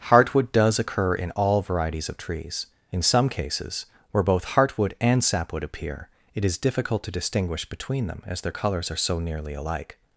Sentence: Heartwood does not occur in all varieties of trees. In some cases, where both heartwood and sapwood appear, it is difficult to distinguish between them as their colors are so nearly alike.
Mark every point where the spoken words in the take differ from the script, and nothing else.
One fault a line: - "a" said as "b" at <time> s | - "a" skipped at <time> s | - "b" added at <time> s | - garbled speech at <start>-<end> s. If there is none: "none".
- "not" skipped at 0.8 s